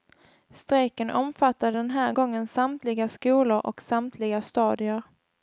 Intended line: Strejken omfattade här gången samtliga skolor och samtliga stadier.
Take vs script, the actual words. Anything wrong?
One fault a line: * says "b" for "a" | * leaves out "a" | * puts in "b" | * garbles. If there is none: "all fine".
* puts in "den"